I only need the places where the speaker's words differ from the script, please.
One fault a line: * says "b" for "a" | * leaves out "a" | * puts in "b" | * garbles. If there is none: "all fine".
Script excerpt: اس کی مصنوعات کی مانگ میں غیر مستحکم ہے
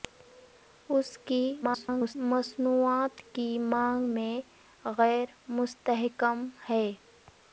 * garbles